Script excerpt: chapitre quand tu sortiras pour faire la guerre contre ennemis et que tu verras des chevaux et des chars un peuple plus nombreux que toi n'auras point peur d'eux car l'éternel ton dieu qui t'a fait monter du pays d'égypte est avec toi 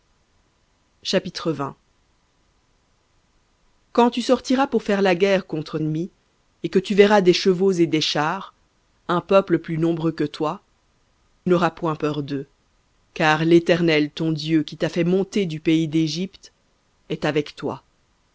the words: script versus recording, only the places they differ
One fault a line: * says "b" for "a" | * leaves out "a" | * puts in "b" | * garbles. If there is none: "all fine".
all fine